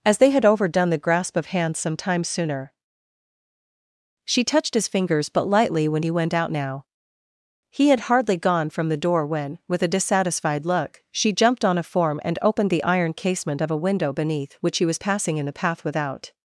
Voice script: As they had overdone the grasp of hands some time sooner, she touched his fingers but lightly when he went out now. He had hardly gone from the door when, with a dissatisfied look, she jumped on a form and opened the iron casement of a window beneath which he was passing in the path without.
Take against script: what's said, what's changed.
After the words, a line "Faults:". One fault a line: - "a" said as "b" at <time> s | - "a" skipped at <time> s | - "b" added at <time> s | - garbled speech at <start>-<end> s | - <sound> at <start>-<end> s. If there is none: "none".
As they had overdone the grasp of hands some time sooner, she touched his fingers but lightly when he went out now. He had hardly gone from the door when, with a dissatisfied look, she jumped on a form and opened the iron casement of a window beneath which he was passing in the path without.
Faults:
none